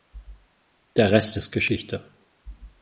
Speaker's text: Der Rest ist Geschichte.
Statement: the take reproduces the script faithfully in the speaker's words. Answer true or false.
true